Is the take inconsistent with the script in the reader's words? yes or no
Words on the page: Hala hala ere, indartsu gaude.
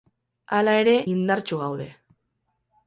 yes